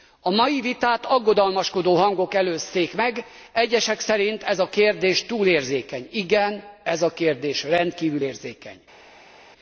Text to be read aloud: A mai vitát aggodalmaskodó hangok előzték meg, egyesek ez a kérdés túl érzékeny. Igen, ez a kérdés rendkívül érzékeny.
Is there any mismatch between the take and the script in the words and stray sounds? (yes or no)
yes